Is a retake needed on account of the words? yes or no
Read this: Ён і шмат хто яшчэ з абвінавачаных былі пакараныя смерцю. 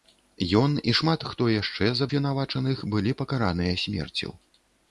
no